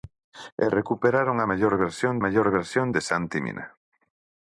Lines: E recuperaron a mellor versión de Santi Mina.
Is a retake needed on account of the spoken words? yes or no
yes